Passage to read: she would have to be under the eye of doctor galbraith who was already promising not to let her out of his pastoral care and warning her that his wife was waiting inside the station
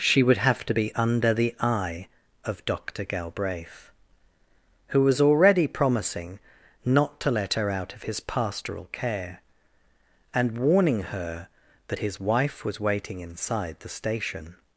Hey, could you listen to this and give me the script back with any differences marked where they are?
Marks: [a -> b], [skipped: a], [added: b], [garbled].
she would have to be under the eye of doctor galbraith who was already promising not to let her out of his pastoral care and warning her that his wife was waiting inside the station